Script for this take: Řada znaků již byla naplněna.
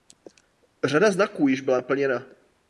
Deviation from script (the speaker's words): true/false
false